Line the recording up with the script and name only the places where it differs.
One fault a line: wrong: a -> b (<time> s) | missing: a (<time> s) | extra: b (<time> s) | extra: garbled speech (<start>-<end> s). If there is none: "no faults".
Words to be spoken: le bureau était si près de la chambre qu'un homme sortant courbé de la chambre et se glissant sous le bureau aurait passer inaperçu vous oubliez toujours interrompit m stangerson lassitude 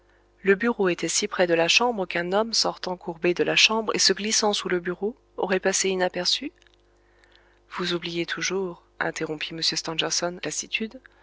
no faults